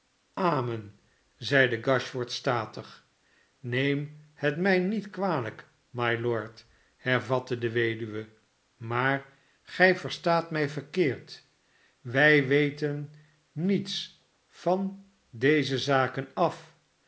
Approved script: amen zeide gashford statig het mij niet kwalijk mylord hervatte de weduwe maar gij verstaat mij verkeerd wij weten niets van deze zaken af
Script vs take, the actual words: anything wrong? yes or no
yes